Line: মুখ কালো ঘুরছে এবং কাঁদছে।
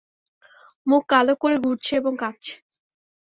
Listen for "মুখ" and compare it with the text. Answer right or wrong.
right